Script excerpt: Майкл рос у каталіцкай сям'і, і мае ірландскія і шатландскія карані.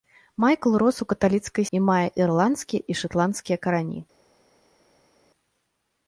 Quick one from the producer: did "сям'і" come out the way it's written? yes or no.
no